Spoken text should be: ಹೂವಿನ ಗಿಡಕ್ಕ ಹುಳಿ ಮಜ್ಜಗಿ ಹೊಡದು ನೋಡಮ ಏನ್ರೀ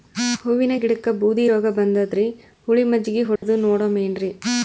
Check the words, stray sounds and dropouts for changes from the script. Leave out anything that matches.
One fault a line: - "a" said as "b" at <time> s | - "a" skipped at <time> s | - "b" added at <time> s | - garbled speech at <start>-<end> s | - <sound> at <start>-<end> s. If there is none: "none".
- "ಬೂದಿ ರೋಗಬಂದದರಿ" added at 1.1 s
- dropout at 3.4-3.4 s